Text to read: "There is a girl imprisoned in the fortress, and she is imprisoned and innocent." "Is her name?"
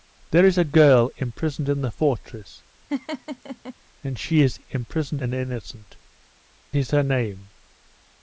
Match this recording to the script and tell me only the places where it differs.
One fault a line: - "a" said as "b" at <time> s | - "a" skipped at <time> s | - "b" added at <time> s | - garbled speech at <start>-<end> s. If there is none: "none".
none